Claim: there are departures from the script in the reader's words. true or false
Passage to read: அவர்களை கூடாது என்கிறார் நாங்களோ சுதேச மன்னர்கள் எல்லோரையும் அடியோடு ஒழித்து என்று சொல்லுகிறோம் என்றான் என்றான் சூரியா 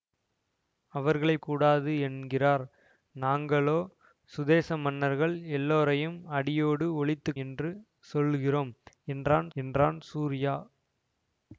false